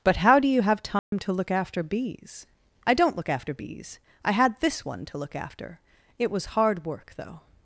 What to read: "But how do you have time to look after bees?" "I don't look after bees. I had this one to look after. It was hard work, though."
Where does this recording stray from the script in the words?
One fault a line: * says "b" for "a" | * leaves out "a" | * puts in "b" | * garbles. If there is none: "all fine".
all fine